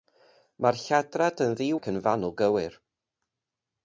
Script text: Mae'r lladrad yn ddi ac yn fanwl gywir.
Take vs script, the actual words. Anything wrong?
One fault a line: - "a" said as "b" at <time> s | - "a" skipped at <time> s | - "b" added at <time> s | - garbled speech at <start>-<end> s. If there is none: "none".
none